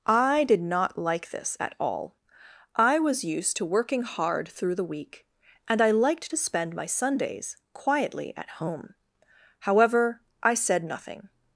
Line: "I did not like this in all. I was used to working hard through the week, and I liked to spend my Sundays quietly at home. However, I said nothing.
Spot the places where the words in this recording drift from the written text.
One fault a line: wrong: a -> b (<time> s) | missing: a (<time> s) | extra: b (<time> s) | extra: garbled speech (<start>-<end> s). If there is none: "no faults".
wrong: in -> at (1.6 s)